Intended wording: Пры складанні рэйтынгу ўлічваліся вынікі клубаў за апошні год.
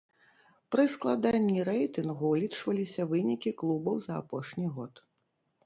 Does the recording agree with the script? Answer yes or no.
yes